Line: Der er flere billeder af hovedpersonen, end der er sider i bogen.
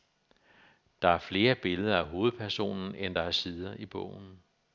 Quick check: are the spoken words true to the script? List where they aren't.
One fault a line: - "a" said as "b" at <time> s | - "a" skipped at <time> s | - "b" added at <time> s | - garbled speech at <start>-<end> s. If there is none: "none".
none